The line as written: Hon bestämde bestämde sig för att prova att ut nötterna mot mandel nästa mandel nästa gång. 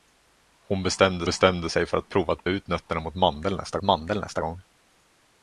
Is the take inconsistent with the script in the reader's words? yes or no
no